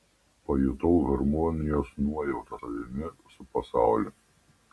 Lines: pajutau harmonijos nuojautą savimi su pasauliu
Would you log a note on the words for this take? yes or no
no